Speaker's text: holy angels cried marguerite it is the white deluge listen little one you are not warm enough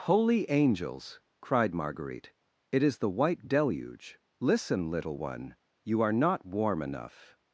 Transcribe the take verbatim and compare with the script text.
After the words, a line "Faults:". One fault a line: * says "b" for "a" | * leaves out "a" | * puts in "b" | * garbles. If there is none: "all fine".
holy angels cried marguerite it is the white deluge listen little one you are not warm enough
Faults:
all fine